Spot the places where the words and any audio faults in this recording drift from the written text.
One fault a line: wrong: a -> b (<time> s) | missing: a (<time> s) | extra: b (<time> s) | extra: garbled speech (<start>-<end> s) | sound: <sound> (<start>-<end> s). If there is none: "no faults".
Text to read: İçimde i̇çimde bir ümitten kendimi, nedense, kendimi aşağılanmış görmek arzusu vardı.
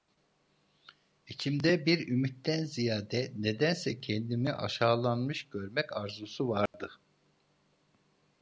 missing: i̇çimde (1.9 s)
wrong: kendimi -> ziyade (2.6 s)
sound: dropout (6.7-6.7 s)